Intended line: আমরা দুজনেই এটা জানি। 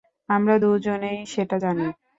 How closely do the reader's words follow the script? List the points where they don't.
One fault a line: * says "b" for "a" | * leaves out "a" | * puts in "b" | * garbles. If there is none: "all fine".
* says "সেটা" for "এটা"